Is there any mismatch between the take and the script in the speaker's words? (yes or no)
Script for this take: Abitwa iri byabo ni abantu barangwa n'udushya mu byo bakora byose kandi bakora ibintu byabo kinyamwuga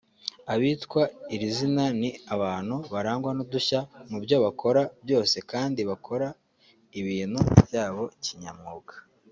yes